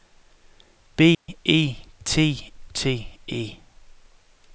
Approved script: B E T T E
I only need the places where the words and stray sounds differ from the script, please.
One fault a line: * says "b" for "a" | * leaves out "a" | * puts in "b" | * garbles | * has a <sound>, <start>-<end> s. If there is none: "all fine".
* has a dropout, 1.1-1.3 s